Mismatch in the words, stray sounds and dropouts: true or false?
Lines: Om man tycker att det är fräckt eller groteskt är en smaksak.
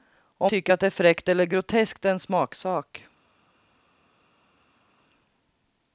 true